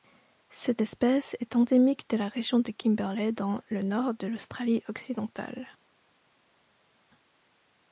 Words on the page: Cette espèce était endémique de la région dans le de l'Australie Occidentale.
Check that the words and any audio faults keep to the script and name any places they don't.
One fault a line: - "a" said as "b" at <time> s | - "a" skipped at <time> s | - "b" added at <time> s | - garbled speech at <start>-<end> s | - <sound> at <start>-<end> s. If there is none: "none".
- "était" said as "est" at 1.4 s
- "de Kimberley" added at 2.6 s
- "nord" added at 3.8 s